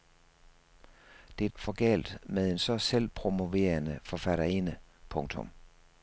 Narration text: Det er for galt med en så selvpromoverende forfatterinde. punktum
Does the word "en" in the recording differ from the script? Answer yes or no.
no